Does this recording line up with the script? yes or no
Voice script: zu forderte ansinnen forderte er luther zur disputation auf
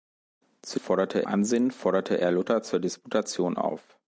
yes